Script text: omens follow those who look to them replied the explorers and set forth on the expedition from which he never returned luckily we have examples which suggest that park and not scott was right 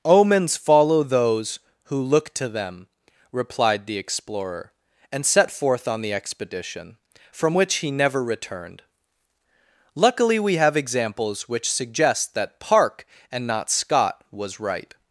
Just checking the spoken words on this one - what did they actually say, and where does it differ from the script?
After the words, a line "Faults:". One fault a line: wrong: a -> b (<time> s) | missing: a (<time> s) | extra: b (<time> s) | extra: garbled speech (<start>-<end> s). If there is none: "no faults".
omens follow those who look to them replied the explorer and set forth on the expedition from which he never returned luckily we have examples which suggest that park and not scott was right
Faults:
wrong: explorers -> explorer (4.0 s)